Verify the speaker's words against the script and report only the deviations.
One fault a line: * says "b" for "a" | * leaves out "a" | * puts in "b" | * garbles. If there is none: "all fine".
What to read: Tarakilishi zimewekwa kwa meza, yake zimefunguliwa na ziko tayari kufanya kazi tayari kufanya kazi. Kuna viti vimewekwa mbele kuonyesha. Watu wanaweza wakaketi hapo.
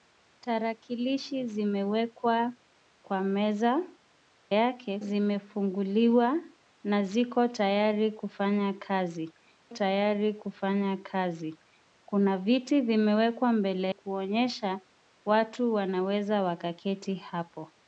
all fine